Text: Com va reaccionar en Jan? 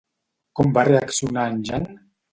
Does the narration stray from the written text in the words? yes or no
no